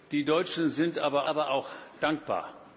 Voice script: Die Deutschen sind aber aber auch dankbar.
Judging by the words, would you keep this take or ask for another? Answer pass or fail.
pass